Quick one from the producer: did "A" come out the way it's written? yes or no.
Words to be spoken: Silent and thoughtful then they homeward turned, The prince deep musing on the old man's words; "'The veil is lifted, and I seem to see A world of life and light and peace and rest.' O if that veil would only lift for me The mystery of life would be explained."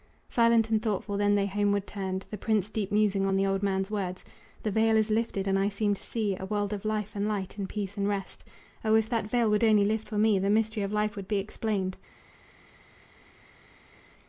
yes